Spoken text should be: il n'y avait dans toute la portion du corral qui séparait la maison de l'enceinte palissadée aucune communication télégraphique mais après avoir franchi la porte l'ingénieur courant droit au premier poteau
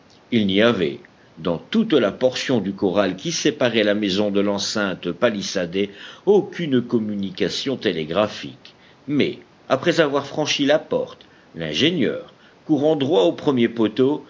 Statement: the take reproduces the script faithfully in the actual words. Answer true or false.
true